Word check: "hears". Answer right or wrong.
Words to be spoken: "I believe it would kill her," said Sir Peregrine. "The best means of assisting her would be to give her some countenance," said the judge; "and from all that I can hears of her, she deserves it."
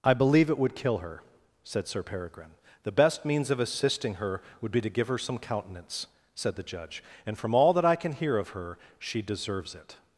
wrong